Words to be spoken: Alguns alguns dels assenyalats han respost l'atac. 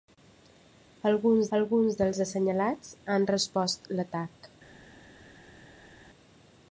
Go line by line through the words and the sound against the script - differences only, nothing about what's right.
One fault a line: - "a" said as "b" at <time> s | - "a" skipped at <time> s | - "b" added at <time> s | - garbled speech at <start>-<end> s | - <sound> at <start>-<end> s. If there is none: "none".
none